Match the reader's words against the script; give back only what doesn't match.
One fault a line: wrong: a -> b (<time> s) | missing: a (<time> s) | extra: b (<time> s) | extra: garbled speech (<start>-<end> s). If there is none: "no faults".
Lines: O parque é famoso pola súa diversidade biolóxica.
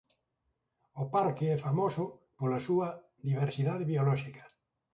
no faults